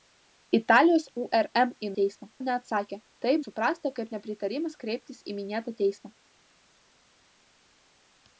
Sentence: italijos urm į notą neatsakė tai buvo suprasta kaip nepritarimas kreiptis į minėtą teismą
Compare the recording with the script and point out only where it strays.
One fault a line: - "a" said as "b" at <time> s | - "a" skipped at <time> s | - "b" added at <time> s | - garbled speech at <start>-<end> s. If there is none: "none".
- "notą" said as "teismą" at 2.0 s
- "buvo" skipped at 3.3 s